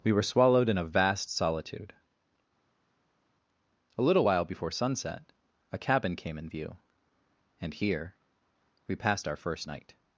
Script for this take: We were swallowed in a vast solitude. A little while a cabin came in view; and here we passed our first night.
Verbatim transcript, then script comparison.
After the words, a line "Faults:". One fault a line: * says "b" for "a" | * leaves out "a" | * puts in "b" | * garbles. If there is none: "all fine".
We were swallowed in a vast solitude. A little while before sunset, a cabin came in view; and here we passed our first night.
Faults:
* puts in "before sunset"